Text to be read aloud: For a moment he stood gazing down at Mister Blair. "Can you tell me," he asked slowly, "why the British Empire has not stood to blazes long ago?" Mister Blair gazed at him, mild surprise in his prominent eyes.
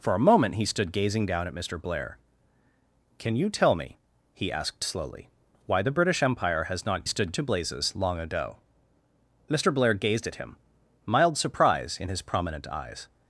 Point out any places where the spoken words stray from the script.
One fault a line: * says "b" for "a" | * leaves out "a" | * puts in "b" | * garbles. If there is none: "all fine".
all fine